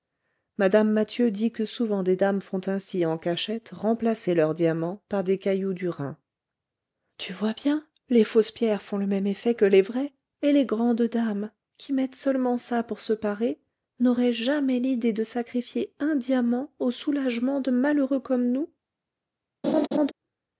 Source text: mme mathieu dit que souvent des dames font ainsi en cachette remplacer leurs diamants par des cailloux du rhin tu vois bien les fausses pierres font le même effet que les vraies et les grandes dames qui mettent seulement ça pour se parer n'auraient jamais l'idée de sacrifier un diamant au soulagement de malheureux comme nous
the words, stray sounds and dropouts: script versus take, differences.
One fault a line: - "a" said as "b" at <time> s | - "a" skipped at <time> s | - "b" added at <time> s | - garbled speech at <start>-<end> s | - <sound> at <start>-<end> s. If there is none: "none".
- laugh at 19.6-20.1 s